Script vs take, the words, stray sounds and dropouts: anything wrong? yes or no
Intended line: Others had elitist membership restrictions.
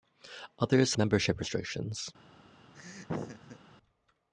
yes